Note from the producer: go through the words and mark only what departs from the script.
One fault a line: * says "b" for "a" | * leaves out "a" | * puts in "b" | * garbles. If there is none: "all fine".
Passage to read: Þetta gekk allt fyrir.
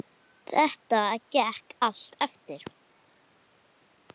* says "eftir" for "fyrir"